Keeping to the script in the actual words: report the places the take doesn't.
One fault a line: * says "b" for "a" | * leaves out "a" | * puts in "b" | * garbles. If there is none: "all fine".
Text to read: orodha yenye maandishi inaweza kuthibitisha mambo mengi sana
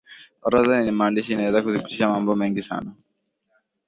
all fine